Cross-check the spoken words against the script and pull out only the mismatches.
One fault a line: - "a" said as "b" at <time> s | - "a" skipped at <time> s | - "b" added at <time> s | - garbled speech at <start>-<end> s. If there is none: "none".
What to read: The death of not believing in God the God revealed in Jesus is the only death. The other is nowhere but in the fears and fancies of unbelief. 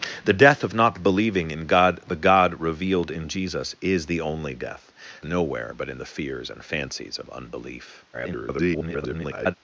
- "The other is" skipped at 4.9 s
- garbled speech at 8.1-9.6 s